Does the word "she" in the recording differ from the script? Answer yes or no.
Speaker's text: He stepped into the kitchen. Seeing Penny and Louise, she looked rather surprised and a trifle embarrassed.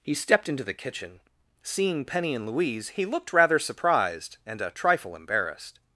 yes